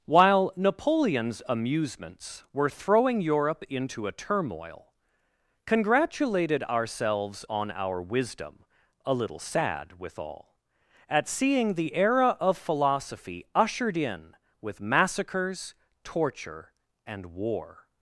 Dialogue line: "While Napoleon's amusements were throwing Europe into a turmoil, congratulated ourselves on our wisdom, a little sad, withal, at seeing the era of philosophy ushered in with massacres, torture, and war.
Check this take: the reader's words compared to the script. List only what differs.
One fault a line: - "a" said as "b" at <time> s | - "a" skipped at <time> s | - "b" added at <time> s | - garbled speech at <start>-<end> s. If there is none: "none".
none